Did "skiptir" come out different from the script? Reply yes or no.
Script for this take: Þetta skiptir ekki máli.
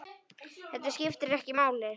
no